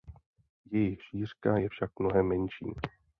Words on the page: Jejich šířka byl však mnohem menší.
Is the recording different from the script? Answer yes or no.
yes